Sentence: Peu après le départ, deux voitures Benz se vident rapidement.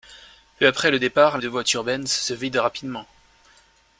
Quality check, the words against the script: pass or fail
pass